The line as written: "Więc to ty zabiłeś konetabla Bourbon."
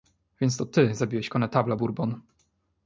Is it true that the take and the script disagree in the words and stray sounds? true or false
false